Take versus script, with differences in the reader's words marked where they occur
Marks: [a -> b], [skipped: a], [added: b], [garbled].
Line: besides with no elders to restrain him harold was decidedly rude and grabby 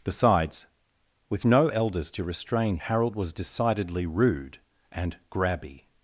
besides with no elders to restrain [skipped: him] harold was decidedly rude and grabby